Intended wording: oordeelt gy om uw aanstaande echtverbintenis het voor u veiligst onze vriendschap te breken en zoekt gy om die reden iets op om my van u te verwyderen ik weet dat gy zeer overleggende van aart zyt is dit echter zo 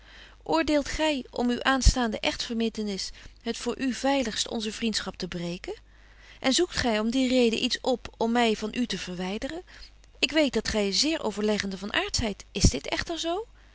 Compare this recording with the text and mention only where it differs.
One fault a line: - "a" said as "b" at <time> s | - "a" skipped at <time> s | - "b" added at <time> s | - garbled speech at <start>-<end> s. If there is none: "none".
none